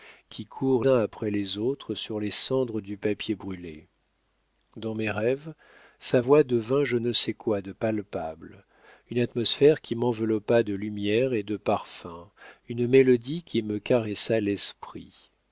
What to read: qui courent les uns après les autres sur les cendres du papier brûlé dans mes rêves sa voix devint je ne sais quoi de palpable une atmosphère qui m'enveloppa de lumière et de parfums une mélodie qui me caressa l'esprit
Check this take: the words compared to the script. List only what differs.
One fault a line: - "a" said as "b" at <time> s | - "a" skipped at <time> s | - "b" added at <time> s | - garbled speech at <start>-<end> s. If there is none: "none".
- "les" skipped at 0.8 s